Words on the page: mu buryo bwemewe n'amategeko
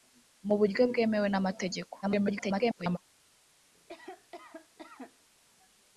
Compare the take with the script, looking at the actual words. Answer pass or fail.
fail